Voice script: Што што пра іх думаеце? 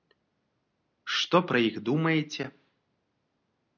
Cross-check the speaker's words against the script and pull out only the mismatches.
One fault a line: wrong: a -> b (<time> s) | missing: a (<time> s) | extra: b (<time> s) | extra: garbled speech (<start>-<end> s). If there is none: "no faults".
missing: што (1.4 s)